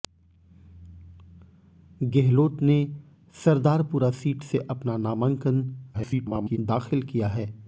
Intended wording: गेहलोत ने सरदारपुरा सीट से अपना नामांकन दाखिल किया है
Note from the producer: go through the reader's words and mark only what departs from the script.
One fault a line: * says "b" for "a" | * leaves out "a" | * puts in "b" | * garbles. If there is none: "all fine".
* garbles